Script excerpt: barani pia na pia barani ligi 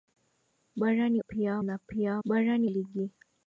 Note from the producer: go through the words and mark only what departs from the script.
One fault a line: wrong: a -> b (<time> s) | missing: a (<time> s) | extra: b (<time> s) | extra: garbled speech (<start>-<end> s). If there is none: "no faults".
no faults